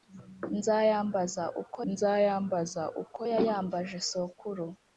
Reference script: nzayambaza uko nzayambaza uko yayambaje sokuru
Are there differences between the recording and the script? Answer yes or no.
no